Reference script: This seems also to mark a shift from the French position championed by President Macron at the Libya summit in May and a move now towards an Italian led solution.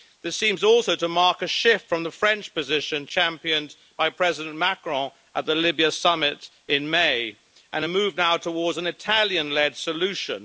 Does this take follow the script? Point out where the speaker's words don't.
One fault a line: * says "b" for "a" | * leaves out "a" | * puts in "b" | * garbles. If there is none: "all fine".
all fine